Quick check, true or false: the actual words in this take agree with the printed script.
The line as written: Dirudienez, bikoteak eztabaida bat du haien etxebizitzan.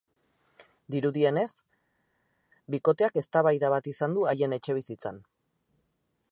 false